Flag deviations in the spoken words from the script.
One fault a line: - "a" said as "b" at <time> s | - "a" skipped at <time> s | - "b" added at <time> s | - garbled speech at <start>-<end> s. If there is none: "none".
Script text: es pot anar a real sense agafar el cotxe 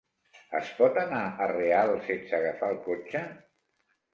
none